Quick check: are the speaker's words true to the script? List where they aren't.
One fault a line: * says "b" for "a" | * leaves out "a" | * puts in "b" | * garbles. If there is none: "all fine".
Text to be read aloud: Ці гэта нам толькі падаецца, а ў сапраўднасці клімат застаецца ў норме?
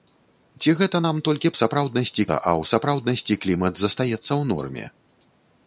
* says "сапраўднасці" for "падаецца"